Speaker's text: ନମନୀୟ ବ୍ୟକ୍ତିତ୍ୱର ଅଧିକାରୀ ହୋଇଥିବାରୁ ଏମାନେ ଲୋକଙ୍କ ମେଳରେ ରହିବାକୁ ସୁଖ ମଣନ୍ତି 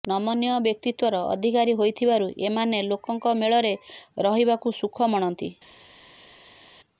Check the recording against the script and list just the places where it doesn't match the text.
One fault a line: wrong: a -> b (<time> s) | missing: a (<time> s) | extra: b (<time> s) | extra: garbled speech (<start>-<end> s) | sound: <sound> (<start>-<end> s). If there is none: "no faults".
no faults